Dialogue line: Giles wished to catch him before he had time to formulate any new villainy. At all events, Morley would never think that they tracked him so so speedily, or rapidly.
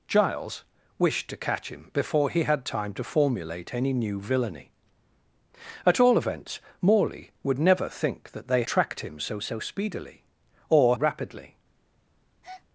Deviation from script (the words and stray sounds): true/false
true